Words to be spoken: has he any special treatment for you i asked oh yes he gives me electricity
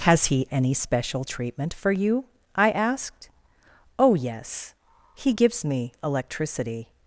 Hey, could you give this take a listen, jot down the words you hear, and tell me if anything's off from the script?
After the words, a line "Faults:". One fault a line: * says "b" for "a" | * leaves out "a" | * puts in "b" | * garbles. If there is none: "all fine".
has he any special treatment for you i asked oh yes he gives me electricity
Faults:
all fine